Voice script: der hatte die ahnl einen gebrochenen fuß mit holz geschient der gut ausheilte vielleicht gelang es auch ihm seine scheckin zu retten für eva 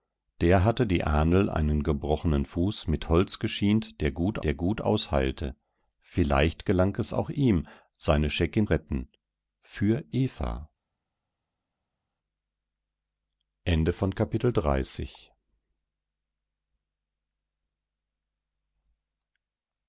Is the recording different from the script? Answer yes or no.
yes